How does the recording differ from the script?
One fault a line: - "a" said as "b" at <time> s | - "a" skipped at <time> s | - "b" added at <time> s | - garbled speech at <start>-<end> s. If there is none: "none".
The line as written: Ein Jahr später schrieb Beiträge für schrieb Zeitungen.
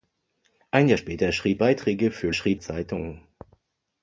none